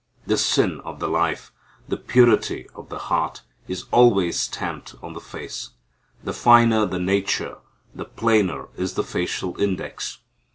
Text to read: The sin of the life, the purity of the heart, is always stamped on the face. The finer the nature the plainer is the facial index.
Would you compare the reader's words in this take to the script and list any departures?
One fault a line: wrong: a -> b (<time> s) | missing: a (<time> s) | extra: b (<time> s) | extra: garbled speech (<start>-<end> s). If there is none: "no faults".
no faults